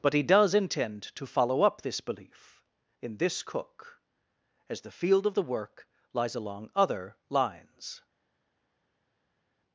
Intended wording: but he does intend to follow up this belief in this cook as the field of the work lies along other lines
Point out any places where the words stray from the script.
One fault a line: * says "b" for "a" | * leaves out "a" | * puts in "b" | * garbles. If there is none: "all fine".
all fine